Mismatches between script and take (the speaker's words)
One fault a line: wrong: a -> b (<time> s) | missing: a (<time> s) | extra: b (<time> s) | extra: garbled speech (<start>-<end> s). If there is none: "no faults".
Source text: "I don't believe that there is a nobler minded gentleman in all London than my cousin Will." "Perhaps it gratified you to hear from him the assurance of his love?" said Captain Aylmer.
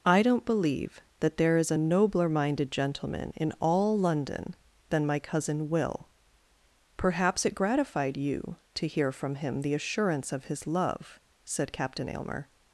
no faults